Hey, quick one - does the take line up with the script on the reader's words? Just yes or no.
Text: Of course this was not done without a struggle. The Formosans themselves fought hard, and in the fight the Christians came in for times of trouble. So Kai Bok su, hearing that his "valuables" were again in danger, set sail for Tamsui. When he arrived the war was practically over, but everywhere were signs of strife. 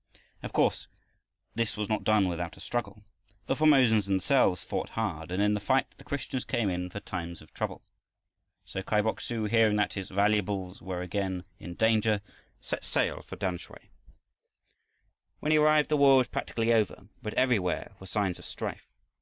yes